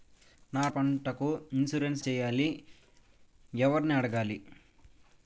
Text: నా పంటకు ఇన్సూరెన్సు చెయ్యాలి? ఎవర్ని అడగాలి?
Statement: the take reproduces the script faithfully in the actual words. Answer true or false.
true